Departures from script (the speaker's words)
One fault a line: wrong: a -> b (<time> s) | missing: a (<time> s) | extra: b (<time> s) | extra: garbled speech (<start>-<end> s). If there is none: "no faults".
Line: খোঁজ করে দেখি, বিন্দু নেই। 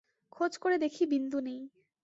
no faults